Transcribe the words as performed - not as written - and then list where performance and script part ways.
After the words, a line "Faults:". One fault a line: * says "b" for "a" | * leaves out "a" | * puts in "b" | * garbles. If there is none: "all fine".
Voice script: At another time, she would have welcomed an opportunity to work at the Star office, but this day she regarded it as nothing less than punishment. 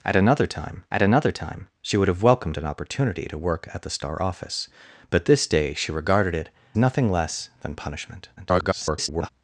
At another time at another time, she would have welcomed an opportunity to work at the Star office, but this day she regarded it nothing less than punishment. [garbled]
Faults:
* puts in "at another time"
* leaves out "as"
* garbles